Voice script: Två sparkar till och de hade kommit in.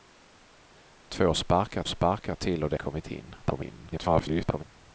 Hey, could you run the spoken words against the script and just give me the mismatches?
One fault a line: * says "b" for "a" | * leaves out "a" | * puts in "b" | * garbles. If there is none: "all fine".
* puts in "sparkar"
* leaves out "hade"
* garbles